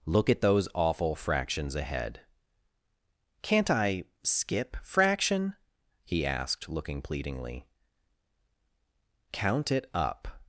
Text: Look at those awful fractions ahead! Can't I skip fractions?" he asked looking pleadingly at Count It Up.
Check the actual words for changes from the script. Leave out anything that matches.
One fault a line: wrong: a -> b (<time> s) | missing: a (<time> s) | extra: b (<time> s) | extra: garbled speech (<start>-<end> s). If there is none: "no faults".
wrong: fractions -> fraction (4.8 s)
missing: at (7.7 s)